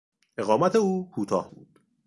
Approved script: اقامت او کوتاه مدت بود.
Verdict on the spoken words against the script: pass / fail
fail